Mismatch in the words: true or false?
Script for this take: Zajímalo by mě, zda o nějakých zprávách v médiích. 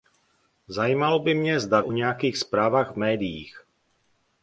false